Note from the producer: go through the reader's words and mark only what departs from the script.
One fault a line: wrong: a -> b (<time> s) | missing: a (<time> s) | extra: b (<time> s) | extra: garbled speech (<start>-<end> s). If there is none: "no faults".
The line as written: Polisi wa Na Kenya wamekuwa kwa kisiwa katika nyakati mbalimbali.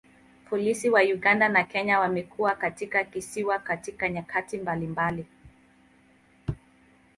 extra: Uganda (1.0 s)
wrong: kwa -> katika (2.5 s)